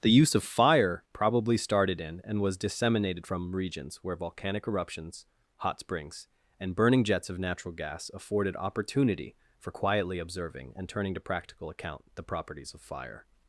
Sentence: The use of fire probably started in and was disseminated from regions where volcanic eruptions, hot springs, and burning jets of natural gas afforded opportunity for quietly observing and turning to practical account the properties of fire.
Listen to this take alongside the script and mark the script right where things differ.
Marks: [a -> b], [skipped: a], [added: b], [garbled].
The use of fire probably started in and was disseminated from regions where volcanic eruptions, hot springs, and burning jets of natural gas afforded opportunity for quietly observing and turning to practical account the properties of fire.